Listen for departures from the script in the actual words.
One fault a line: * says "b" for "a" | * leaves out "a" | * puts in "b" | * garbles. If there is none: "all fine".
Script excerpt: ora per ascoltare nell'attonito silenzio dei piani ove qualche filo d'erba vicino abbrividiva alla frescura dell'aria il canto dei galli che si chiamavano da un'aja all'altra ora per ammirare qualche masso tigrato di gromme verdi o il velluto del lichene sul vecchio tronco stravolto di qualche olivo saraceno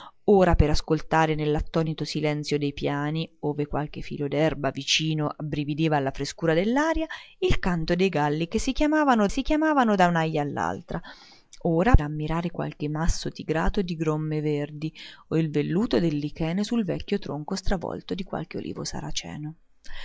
* puts in "si chiamavano"
* leaves out "per"